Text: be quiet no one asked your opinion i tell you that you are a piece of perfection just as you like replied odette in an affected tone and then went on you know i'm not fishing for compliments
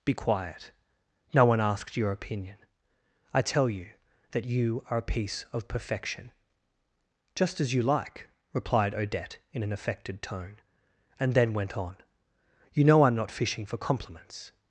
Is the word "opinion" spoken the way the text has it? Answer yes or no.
yes